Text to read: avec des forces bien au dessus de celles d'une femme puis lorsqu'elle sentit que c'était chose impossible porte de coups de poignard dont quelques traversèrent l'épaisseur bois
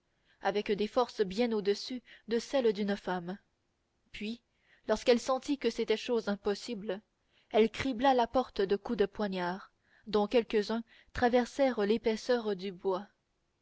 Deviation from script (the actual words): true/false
true